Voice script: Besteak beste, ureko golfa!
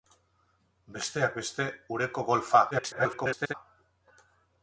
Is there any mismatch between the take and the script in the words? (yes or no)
yes